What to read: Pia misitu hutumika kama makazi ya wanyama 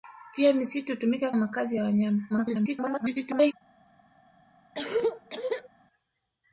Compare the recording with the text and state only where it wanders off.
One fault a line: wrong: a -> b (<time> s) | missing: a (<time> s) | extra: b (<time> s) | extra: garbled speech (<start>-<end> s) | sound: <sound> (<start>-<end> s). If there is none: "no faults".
missing: kama (1.3 s)
extra: garbled speech (2.3-3.5 s)
sound: cough (4.7-5.7 s)